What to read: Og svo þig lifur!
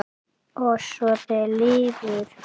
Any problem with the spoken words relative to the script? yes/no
no